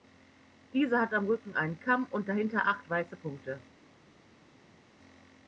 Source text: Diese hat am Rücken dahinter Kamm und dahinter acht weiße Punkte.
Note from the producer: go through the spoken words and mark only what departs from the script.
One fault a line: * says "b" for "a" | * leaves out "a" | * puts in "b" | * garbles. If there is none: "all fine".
* says "einen" for "dahinter"